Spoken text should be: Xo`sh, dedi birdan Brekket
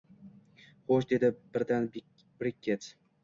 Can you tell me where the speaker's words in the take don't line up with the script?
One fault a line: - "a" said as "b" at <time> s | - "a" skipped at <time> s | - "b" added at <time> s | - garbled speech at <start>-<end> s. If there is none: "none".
none